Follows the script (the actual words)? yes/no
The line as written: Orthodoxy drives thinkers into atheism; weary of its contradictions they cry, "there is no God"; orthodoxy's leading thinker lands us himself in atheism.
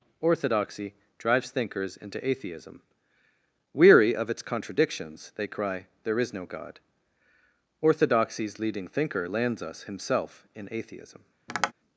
yes